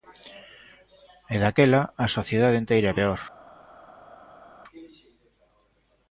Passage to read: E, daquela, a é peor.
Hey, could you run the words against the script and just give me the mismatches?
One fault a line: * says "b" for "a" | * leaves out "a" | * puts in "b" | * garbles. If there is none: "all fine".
* puts in "sociedade enteira"